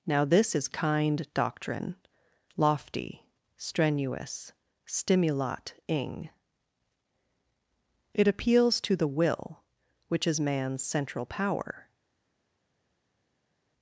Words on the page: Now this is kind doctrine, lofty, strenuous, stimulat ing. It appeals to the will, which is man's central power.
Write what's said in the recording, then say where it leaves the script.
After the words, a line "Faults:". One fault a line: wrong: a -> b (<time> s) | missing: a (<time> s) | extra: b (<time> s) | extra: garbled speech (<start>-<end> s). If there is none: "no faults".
Now this is kind doctrine, lofty, strenuous, stimulat ing. It appeals to the will, which is man's central power.
Faults:
no faults